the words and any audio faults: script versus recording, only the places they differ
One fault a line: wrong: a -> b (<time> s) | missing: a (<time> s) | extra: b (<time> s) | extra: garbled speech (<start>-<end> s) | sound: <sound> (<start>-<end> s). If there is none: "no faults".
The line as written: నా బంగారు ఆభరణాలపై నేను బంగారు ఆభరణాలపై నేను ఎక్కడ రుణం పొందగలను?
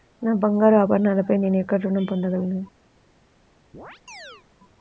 missing: బంగారు ఆభరణాలపై నేను (1.6 s)
sound: chirp (3.7-4.5 s)